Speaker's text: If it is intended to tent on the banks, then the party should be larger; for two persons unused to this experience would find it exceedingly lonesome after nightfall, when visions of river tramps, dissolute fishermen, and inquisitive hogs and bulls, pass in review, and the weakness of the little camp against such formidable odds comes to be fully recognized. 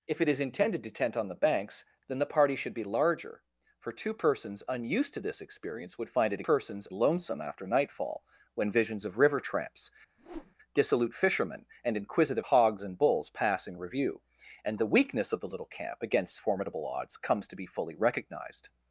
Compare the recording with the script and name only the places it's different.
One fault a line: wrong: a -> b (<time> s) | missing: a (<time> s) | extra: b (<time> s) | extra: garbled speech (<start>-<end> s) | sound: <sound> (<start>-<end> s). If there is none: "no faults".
wrong: exceedingly -> persons (6.4 s)
sound: whoosh (10.2-10.5 s)
missing: such (16.4 s)